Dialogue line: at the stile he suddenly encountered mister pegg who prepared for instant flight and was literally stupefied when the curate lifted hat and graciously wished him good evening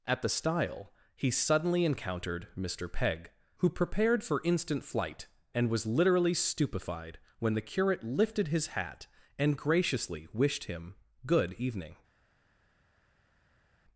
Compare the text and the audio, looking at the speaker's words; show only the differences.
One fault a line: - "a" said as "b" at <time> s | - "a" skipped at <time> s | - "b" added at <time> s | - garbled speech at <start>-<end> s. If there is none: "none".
- "his" added at 8.5 s